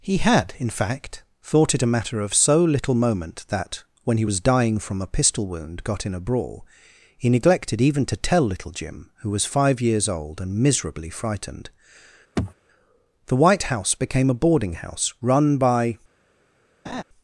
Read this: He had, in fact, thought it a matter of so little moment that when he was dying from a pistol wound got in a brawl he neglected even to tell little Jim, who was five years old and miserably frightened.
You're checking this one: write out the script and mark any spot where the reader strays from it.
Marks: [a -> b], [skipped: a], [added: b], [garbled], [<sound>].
He had, in fact, thought it a matter of so little moment that when he was dying from a pistol wound got in a brawl he neglected even to tell little Jim, who was five years old and miserably frightened. [throat clearing] [added: The white house became a boarding house run by] [laugh]